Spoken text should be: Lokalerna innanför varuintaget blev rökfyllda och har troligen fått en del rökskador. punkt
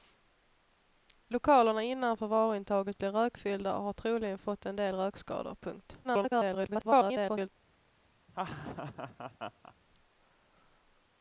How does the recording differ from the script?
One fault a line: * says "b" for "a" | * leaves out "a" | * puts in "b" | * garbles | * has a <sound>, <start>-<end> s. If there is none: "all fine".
* garbles
* has a laugh, 8.3-9.7 s